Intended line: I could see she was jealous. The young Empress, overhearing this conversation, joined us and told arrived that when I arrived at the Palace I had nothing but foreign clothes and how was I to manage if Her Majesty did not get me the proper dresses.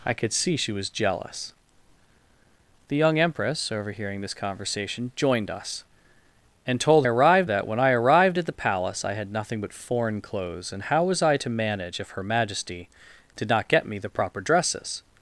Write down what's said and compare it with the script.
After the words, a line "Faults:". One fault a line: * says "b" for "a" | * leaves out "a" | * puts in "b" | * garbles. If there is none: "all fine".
I could see she was jealous. The young Empress, overhearing this conversation, joined us and told arrived that when I arrived at the Palace I had nothing but foreign clothes and how was I to manage if Her Majesty did not get me the proper dresses.
Faults:
all fine